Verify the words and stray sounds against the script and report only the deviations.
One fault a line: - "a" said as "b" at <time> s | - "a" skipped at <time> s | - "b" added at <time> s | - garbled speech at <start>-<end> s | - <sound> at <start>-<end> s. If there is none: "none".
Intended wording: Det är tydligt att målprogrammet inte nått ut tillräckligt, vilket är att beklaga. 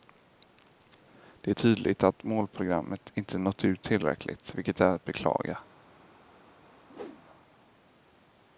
- whoosh at 6.9-7.2 s